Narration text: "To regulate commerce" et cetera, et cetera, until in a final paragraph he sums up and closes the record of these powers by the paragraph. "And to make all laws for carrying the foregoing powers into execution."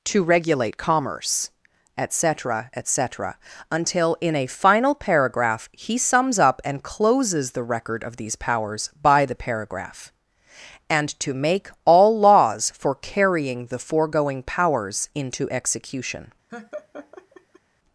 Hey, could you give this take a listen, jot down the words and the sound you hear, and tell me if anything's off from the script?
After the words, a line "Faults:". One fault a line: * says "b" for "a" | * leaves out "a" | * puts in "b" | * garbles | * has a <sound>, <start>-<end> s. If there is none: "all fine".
"To regulate commerce" et cetera, et cetera, until in a final paragraph he sums up and closes the record of these powers by the paragraph. "And to make all laws for carrying the foregoing powers into execution."
Faults:
* has a laugh, 16.5-17.6 s